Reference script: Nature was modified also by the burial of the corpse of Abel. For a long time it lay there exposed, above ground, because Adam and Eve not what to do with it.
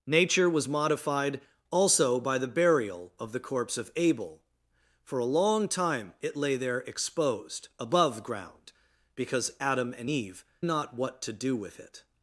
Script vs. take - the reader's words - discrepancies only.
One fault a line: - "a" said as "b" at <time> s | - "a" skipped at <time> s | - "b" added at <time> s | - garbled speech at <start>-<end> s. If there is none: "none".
none